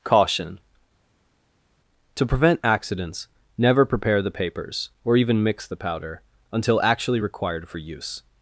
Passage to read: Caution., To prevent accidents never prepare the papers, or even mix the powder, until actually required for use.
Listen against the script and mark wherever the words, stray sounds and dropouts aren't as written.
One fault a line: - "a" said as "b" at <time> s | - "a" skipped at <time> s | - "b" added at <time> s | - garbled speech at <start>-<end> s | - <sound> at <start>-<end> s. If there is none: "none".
none